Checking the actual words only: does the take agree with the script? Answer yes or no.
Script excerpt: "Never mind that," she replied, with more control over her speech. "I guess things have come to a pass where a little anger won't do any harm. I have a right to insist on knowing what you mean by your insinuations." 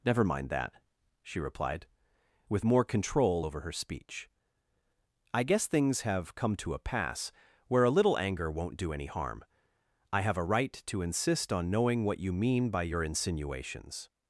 yes